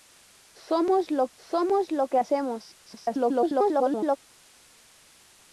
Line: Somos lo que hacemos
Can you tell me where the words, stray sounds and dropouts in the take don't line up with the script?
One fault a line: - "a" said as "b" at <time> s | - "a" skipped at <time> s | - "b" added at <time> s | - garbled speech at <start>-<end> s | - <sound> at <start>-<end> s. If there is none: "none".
- "somos lo" added at 1.4 s
- garbled speech at 2.9-4.2 s